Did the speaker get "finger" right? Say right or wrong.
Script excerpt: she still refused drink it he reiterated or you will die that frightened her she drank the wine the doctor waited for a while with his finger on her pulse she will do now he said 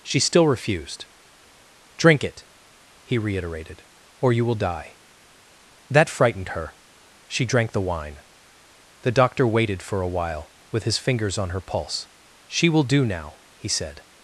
wrong